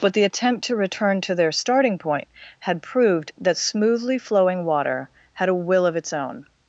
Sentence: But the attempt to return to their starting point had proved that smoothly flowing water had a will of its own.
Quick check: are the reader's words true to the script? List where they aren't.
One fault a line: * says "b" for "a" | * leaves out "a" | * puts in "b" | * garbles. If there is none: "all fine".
all fine